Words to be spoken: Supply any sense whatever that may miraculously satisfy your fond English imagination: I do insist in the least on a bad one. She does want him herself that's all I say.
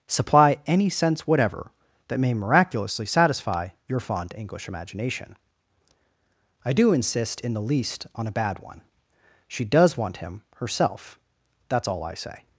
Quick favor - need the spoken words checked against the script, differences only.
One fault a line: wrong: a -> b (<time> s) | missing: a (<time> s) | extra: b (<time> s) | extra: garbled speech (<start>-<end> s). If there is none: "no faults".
no faults